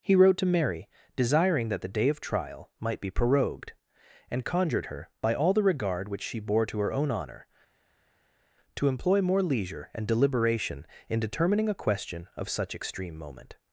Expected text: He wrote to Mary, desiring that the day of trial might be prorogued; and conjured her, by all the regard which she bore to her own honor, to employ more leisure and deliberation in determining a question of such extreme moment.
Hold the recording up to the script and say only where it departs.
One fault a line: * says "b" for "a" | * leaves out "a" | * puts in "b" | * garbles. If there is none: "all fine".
all fine